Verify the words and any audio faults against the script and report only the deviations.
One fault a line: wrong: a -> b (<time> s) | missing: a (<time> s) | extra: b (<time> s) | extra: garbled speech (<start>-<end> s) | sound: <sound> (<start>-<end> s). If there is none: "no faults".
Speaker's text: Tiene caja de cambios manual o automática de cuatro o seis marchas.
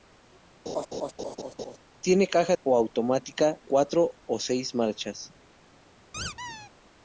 sound: laugh (0.7-1.8 s)
missing: de cambios manual (2.5 s)
missing: de (3.6 s)
sound: squeak (6.1-6.7 s)